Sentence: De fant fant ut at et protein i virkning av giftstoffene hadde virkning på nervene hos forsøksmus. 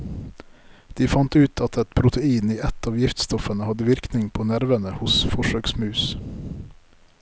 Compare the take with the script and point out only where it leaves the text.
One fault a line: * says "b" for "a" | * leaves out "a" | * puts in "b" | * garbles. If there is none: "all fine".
* leaves out "fant"
* says "ett" for "virkning"